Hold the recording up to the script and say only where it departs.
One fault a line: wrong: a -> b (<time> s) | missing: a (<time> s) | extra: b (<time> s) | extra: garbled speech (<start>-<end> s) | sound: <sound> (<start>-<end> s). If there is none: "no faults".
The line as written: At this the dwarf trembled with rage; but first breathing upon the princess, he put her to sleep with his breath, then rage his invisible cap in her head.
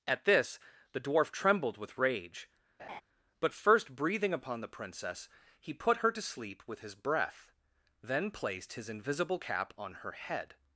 sound: laugh (2.8-3.0 s)
wrong: rage -> placed (8.3 s)
wrong: in -> on (9.8 s)